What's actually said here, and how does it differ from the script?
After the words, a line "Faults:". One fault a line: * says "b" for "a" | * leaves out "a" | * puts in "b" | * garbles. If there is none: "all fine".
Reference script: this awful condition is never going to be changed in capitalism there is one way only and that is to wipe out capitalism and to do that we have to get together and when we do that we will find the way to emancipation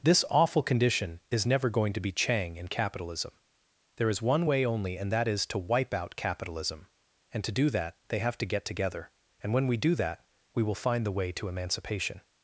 this awful condition is never going to be chang in capitalism there is one way only and that is to wipe out capitalism and to do that they have to get together and when we do that we will find the way to emancipation
Faults:
* says "chang" for "changed"
* says "they" for "we"